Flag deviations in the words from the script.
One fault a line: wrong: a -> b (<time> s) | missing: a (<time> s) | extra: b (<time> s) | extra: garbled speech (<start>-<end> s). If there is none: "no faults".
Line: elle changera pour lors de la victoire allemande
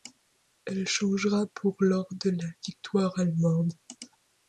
no faults